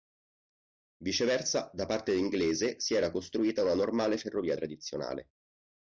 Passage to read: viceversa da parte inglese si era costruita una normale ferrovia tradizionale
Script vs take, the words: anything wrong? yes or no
no